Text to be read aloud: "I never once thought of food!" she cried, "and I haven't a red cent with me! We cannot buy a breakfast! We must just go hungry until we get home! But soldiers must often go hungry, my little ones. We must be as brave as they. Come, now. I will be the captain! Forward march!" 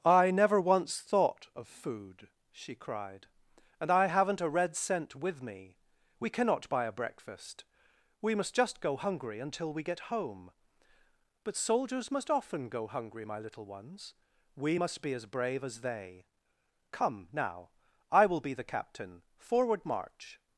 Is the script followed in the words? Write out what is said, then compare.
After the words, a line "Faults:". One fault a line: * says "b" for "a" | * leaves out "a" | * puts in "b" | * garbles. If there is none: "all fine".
"I never once thought of food!" she cried, "and I haven't a red cent with me! We cannot buy a breakfast! We must just go hungry until we get home! But soldiers must often go hungry, my little ones. We must be as brave as they. Come, now. I will be the captain! Forward march!"
Faults:
all fine